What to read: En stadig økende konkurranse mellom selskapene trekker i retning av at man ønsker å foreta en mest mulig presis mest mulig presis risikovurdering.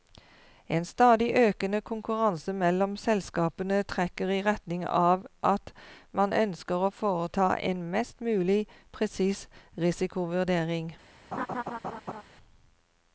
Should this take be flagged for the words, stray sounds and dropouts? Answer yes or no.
yes